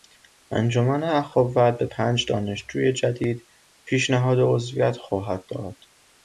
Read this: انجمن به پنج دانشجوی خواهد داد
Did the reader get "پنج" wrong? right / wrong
right